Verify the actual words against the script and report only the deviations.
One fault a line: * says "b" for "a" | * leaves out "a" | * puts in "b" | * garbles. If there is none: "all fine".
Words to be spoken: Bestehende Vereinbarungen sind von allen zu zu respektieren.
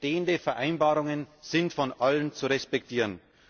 * leaves out "zu"